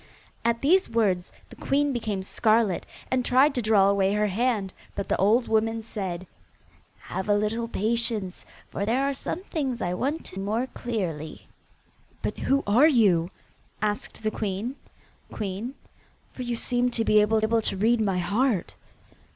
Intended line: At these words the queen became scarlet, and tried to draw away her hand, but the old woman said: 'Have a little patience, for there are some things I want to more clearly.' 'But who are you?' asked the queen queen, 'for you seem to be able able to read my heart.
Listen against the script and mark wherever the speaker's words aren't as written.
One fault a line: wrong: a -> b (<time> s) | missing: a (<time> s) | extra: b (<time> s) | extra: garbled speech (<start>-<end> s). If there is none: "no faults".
no faults